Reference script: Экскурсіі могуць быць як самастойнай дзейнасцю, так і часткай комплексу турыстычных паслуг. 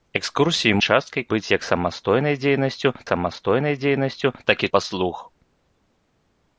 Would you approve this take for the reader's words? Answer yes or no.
no